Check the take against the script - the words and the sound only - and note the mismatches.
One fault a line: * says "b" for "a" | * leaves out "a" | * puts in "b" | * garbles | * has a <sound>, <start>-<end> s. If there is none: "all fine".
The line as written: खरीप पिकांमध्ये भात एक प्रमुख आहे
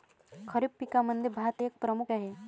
all fine